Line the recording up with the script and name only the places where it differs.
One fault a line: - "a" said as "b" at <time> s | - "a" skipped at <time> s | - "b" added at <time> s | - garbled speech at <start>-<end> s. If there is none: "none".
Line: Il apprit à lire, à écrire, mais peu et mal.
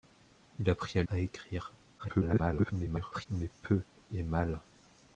- "lire" skipped at 1.0 s
- garbled speech at 2.0-3.3 s